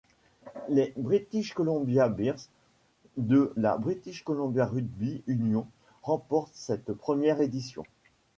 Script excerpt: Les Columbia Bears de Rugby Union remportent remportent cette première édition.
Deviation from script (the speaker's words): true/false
true